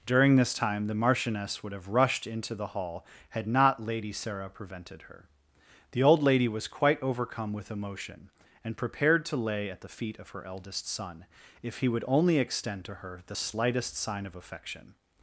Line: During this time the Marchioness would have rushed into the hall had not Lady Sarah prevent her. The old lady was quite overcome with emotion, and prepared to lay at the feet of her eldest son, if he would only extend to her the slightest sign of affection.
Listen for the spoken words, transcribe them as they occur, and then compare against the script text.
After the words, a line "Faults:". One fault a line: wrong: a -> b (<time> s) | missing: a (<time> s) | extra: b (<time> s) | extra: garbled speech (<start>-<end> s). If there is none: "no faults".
During this time the Marchioness would have rushed into the hall had not Lady Sarah prevented her. The old lady was quite overcome with emotion, and prepared to lay at the feet of her eldest son, if he would only extend to her the slightest sign of affection.
Faults:
wrong: prevent -> prevented (4.5 s)